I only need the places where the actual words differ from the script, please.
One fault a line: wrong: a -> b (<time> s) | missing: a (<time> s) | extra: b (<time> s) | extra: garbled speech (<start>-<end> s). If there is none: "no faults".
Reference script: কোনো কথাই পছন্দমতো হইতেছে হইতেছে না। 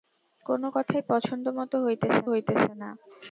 no faults